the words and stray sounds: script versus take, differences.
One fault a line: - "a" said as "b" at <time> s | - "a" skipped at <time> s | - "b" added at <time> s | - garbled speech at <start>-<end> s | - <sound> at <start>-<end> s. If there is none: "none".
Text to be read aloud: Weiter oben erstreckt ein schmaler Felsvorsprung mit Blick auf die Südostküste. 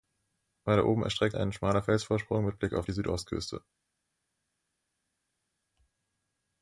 none